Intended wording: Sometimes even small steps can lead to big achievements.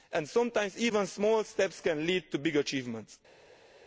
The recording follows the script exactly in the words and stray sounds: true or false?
true